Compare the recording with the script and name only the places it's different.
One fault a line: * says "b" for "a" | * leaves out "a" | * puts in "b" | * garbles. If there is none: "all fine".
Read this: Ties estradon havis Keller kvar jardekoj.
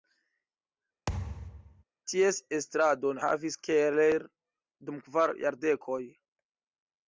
* puts in "dum"